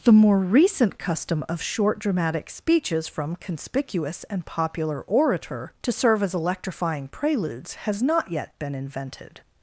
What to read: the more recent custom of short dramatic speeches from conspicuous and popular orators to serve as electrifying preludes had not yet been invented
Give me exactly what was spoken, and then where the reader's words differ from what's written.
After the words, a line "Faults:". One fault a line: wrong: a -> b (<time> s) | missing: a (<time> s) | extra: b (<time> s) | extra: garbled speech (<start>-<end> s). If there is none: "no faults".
the more recent custom of short dramatic speeches from conspicuous and popular orator to serve as electrifying preludes has not yet been invented
Faults:
wrong: orators -> orator (5.0 s)
wrong: had -> has (7.7 s)